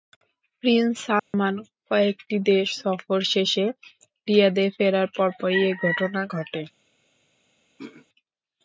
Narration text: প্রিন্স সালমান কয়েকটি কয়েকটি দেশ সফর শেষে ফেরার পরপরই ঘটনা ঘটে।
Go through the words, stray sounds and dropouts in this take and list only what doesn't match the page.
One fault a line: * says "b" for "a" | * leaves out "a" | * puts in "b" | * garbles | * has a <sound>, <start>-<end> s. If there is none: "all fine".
* has a dropout, 1.2-1.3 s
* leaves out "কয়েকটি"
* puts in "রিয়াদে"
* puts in "এ"
* has a throat clearing, 7.8-8.1 s